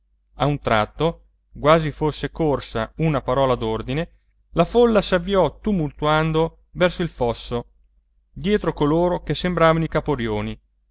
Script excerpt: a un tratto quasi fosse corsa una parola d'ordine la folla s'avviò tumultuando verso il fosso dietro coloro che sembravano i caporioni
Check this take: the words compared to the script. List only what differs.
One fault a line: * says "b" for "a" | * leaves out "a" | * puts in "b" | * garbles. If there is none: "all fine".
all fine